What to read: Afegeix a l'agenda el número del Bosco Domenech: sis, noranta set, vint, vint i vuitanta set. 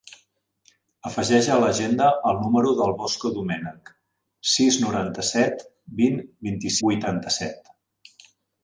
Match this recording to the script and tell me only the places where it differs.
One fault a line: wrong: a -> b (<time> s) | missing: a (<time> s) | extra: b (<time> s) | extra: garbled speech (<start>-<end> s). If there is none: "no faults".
no faults